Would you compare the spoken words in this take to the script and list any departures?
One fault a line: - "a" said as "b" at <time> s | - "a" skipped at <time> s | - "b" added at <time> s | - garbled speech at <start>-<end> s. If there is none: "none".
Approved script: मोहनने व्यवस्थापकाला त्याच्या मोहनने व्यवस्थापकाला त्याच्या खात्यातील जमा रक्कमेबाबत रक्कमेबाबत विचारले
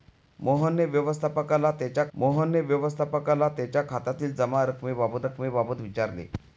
none